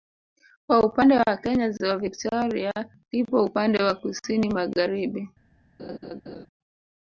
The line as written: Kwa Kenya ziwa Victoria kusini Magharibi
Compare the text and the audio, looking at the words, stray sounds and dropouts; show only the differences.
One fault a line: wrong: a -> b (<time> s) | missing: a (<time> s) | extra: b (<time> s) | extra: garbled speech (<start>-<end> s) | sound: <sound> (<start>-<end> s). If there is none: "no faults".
extra: upande wa (0.8 s)
extra: lipo upande wa (3.1 s)
sound: laugh (5.8-6.5 s)